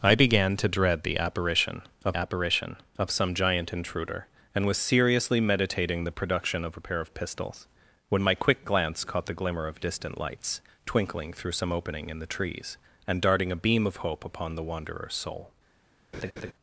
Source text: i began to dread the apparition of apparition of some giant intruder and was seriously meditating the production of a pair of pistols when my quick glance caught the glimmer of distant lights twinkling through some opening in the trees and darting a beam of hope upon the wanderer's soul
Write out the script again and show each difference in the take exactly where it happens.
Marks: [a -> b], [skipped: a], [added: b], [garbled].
i began to dread the apparition of apparition of some giant intruder and was seriously meditating the production of a pair of pistols when my quick glance caught the glimmer of distant lights twinkling through some opening in the trees and darting a beam of hope upon the wanderer's soul